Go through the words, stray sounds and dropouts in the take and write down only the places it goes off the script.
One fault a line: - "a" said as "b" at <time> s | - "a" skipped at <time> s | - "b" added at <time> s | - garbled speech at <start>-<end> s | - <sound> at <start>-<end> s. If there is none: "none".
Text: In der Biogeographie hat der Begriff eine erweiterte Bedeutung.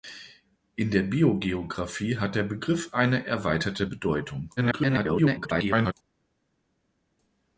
- garbled speech at 4.6-5.9 s